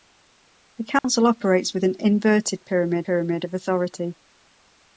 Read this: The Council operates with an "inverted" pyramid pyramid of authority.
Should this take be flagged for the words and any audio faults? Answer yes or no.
yes